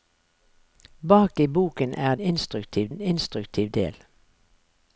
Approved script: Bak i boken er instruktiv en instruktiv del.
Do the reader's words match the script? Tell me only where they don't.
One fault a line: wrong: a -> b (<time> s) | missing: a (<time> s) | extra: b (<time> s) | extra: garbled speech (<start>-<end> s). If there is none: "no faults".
no faults